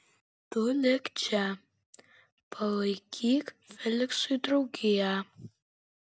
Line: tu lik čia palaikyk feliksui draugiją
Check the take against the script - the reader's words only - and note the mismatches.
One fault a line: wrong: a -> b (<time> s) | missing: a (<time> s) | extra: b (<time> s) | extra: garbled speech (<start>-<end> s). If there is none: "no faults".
no faults